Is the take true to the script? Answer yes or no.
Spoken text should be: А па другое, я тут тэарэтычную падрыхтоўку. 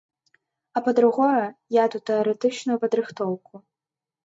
yes